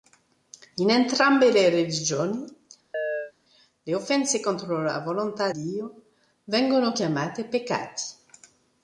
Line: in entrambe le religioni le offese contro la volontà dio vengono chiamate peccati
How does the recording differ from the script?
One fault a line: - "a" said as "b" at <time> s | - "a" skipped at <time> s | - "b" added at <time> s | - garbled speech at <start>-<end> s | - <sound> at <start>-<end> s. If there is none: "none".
- chirp at 2.9-3.3 s